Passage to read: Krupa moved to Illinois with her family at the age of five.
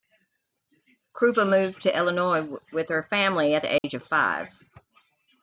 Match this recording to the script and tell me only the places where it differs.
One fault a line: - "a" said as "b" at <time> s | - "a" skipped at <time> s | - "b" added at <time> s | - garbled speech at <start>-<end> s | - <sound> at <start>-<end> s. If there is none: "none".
- dropout at 3.8-3.8 s